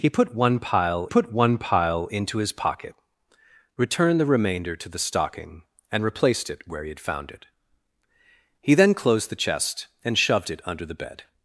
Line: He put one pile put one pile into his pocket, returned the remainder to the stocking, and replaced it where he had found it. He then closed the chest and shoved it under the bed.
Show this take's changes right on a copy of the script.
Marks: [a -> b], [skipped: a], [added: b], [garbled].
He put one pile put one pile into his pocket, returned the remainder to the stocking, and replaced it where he had found it. He then closed the chest and shoved it under the bed.